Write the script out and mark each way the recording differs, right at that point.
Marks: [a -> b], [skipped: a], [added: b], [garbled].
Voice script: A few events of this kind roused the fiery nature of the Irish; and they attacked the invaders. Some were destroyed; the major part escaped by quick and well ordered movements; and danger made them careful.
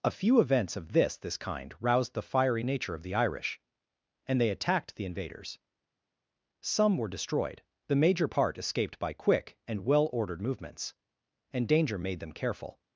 A few events of this [added: this] kind roused the fiery nature of the Irish; and they attacked the invaders. Some were destroyed; the major part escaped by quick and well ordered movements; and danger made them careful.